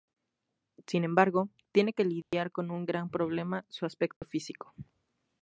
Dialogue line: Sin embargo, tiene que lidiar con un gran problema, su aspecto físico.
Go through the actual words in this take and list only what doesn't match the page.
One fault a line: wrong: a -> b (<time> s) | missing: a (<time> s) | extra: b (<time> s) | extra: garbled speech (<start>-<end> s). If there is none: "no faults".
no faults